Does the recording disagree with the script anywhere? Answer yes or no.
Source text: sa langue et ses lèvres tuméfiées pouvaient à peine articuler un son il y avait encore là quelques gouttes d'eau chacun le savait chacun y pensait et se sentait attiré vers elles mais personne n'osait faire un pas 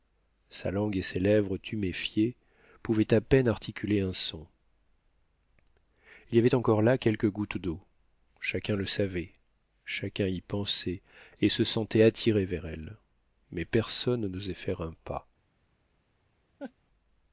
no